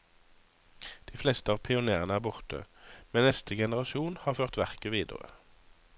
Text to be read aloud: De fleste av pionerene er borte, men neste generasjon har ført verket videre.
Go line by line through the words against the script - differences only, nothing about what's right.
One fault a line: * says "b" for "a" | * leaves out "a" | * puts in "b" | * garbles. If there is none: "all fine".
all fine